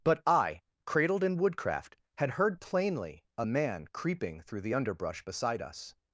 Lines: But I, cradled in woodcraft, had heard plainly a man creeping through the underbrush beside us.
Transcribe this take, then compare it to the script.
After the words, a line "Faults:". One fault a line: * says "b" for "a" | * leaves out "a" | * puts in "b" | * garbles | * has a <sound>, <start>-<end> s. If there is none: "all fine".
But I, cradled in woodcraft, had heard plainly a man creeping through the underbrush beside us.
Faults:
all fine